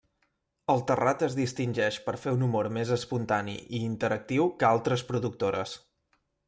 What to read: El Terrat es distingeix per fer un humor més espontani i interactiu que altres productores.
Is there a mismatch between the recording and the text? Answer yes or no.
no